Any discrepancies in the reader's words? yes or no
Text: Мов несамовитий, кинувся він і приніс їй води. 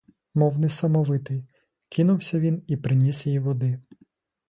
no